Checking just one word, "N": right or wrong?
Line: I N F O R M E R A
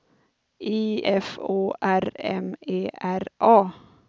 wrong